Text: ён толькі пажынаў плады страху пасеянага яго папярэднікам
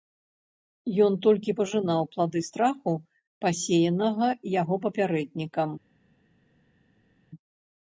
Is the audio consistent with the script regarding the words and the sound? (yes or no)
yes